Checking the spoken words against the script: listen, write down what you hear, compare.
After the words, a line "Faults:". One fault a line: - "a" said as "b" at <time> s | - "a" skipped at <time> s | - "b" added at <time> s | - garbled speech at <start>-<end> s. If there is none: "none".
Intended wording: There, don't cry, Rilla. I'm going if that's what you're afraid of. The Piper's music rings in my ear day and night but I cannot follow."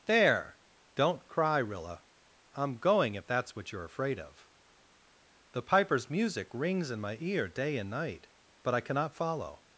There, don't cry, Rilla. I'm going if that's what you're afraid of. The Piper's music rings in my ear day and night but I cannot follow."
Faults:
none